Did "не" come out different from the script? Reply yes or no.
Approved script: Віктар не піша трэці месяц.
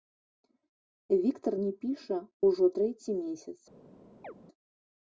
no